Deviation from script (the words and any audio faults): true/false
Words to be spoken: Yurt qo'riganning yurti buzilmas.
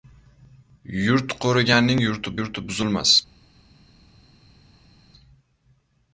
true